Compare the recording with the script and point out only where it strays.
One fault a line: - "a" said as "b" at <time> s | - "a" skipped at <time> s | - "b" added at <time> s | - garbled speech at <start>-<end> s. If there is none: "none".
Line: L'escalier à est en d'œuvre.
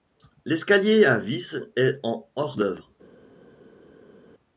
- "vis" added at 1.2 s
- "hors" added at 2.4 s